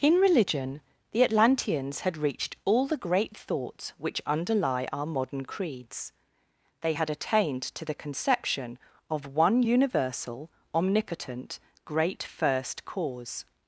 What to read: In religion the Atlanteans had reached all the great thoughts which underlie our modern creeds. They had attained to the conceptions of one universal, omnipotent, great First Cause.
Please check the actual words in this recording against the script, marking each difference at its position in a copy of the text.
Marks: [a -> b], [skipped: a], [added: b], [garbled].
In religion the Atlanteans had reached all the great thoughts which underlie our modern creeds. They had attained to the [conceptions -> conception] of one universal, omnipotent, great First Cause.